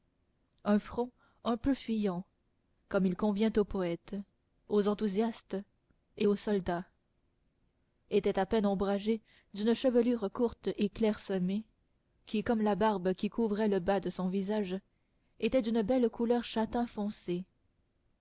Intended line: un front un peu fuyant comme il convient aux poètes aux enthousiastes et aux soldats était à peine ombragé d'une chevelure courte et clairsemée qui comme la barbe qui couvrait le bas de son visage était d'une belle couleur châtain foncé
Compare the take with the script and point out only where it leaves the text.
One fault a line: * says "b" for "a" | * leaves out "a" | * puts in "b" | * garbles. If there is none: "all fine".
all fine